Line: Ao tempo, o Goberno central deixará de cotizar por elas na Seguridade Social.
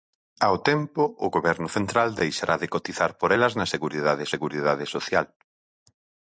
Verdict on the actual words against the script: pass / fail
fail